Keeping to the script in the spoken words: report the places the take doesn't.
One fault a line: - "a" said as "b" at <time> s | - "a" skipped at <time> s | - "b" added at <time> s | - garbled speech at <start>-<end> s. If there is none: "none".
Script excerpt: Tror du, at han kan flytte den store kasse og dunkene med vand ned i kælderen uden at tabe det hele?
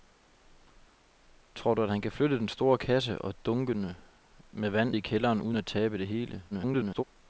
- "ned" skipped at 5.0 s
- garbled speech at 6.5-7.0 s